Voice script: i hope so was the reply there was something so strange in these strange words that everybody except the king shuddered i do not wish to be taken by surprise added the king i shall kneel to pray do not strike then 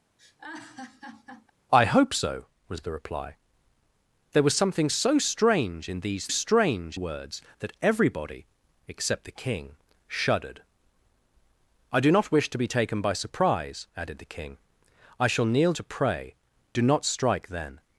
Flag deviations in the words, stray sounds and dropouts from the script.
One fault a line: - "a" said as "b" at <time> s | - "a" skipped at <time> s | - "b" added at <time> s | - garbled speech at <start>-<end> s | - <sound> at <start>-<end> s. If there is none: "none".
- laugh at 0.2-1.5 s